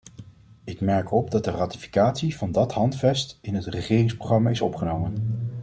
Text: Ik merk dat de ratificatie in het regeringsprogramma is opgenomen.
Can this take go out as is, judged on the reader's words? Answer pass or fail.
fail